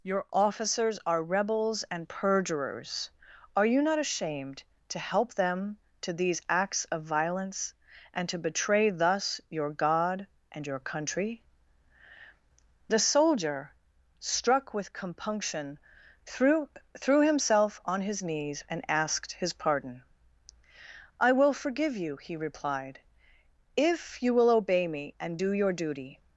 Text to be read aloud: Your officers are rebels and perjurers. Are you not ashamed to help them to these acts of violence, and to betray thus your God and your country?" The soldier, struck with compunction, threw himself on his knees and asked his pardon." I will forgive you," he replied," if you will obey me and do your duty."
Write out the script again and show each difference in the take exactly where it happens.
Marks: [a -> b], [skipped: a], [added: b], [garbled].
Your officers are rebels and perjurers. Are you not ashamed to help them to these acts of violence, and to betray thus your God and your country?" The soldier, struck with compunction, threw [added: threw] himself on his knees and asked his pardon." I will forgive you," he replied," if you will obey me and do your duty."